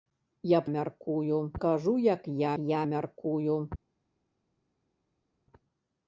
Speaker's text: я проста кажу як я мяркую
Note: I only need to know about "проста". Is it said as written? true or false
false